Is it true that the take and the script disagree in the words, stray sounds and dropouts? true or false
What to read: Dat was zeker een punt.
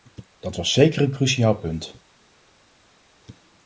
true